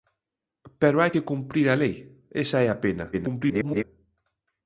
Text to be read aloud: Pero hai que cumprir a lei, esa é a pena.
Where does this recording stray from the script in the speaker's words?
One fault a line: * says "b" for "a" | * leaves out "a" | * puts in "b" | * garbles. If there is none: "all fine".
* garbles